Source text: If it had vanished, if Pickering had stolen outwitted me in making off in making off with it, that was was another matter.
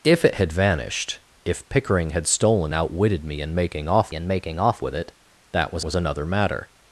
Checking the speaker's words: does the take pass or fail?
pass